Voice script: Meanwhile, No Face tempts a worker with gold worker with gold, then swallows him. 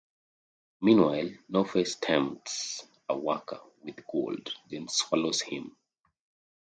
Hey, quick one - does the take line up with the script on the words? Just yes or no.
no